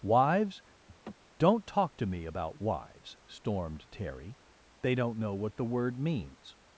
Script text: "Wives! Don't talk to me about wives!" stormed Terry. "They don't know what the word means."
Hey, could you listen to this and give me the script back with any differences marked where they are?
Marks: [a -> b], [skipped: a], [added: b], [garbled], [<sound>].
"Wives! [laugh] Don't talk to me about wives!" stormed Terry. "They don't know what the word means."